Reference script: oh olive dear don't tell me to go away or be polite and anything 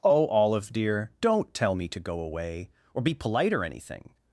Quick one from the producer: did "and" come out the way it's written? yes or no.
no